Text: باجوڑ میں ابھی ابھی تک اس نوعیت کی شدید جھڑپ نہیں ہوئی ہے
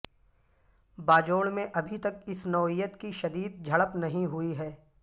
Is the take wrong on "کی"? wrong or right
right